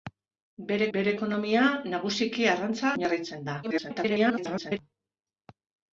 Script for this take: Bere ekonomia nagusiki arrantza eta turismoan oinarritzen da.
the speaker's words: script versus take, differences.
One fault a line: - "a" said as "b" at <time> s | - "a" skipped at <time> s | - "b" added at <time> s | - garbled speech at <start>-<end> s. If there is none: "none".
- "bere" added at 0.9 s
- "eta turismoan" skipped at 2.9 s
- garbled speech at 3.6-4.8 s